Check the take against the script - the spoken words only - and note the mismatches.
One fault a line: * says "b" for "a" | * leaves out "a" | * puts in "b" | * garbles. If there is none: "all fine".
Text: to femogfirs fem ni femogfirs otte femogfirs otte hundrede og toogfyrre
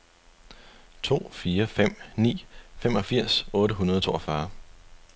* says "fire" for "femogfirs"
* leaves out "femogfirs otte"